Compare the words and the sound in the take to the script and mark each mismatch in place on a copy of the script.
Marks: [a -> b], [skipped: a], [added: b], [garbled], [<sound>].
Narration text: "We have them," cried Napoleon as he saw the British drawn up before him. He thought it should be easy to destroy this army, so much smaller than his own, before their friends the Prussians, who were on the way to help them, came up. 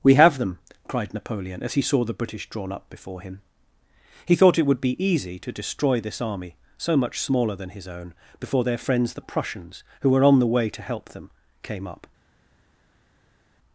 "We have them," cried Napoleon as he saw the British drawn up before him. He thought it [should -> would] be easy to destroy this army, so much smaller than his own, before their friends the Prussians, who were on the way to help them, came up.